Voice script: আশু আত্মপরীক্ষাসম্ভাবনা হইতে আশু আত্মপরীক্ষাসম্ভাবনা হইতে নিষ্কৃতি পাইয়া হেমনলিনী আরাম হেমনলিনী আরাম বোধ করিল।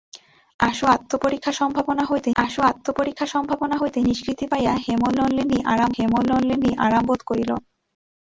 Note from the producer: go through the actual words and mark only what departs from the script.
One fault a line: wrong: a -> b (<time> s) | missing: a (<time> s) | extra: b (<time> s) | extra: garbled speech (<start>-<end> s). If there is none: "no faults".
no faults